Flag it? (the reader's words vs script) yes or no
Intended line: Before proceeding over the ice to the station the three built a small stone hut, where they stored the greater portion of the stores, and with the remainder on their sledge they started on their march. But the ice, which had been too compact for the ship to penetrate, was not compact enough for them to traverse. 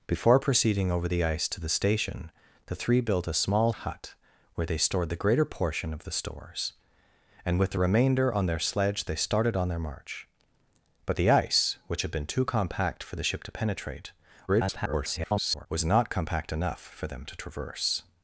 yes